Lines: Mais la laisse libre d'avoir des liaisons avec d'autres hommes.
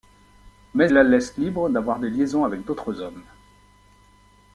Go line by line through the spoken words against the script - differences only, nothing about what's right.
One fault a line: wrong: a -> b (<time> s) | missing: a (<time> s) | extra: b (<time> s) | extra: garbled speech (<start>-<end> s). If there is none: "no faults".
no faults